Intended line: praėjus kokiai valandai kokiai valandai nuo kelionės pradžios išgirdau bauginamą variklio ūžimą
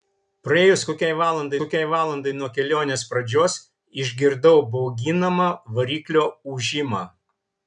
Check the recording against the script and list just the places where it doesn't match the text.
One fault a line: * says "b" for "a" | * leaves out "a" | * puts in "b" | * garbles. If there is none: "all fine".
all fine